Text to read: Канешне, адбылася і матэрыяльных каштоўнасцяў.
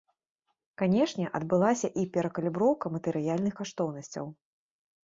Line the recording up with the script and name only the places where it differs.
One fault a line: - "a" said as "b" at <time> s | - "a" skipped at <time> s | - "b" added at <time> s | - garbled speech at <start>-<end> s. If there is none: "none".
- "перакаліброўка" added at 2.2 s